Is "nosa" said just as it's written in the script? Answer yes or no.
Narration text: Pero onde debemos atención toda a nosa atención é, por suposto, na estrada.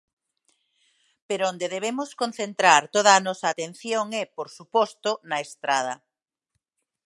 yes